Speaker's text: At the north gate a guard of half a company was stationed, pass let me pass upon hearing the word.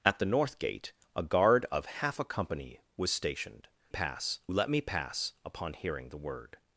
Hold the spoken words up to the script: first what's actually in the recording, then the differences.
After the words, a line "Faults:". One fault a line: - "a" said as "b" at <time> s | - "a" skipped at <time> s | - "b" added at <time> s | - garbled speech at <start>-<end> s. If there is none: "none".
At the north gate a guard of half a company was stationed, pass let me pass upon hearing the word.
Faults:
none